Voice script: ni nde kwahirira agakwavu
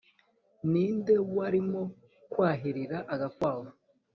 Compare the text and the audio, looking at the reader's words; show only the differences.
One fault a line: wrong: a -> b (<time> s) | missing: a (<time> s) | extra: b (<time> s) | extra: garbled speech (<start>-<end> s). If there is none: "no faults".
extra: warimo (1.4 s)